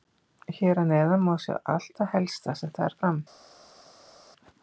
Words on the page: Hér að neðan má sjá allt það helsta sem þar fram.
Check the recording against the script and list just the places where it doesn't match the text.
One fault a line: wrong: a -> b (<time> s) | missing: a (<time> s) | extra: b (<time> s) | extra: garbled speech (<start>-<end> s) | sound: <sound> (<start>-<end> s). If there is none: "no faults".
no faults